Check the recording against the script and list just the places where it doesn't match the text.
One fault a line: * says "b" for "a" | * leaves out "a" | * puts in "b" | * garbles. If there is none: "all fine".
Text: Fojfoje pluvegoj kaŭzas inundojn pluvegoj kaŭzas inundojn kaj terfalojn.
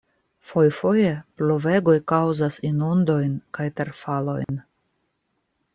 * leaves out "pluvegoj kaŭzas inundojn"